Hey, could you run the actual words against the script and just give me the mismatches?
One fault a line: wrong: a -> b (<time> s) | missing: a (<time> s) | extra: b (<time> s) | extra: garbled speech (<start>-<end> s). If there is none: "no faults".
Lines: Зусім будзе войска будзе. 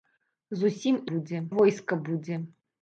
no faults